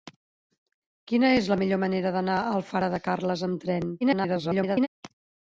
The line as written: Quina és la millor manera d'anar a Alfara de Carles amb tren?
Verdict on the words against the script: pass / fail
fail